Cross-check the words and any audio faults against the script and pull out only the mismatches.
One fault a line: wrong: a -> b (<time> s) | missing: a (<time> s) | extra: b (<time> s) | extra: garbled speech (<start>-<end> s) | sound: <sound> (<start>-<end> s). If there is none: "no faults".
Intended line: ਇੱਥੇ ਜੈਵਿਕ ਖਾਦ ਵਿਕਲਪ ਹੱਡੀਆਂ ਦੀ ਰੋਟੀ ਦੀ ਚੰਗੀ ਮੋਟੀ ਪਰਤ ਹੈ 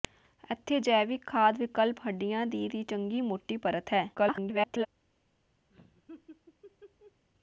missing: ਰੋਟੀ (2.7 s)
extra: garbled speech (4.1-4.9 s)
sound: laugh (5.7-7.2 s)